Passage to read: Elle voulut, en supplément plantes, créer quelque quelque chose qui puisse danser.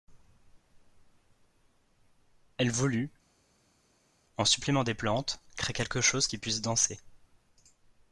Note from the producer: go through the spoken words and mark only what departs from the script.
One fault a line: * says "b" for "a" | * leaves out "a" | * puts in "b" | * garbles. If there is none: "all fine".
* puts in "des"
* leaves out "quelque"